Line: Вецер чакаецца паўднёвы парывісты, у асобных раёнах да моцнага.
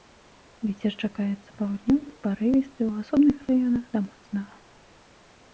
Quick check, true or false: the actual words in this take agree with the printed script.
true